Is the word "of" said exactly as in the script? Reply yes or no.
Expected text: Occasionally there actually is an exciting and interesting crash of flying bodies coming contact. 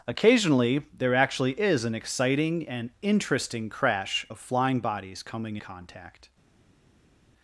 yes